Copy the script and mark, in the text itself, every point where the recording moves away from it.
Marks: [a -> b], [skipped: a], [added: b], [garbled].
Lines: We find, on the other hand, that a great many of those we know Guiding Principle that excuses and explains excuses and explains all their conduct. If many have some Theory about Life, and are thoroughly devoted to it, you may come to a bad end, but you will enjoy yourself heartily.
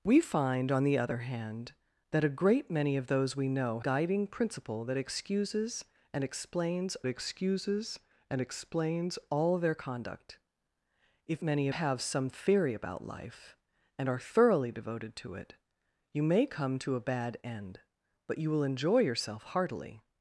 We find, on the other hand, that a great many of those we know Guiding Principle that excuses and explains excuses and explains all their conduct. If many have some Theory about Life, and are thoroughly devoted to it, you may come to a bad end, but you will enjoy yourself heartily.